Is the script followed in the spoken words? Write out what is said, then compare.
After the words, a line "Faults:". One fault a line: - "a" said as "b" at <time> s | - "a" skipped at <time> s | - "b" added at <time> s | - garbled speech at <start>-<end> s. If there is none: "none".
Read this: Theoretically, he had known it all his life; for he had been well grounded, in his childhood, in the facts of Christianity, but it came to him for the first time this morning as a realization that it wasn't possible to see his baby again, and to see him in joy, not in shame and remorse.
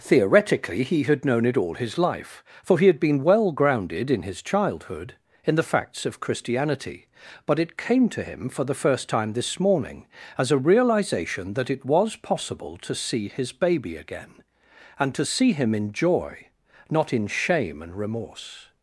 Theoretically, he had known it all his life; for he had been well grounded, in his childhood, in the facts of Christianity, but it came to him for the first time this morning as a realization that it was possible to see his baby again, and to see him in joy, not in shame and remorse.
Faults:
- "wasn't" said as "was" at 11.8 s